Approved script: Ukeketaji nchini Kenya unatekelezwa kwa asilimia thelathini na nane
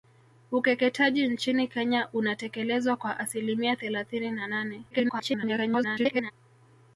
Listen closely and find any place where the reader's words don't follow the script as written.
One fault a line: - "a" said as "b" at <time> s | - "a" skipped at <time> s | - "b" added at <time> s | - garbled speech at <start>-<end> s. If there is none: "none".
- garbled speech at 4.9-6.3 s